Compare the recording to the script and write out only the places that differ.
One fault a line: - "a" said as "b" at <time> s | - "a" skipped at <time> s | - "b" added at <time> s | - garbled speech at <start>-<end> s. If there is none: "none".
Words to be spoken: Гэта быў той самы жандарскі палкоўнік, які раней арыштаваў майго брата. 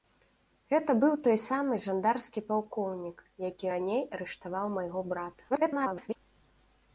- garbled speech at 5.5-6.2 s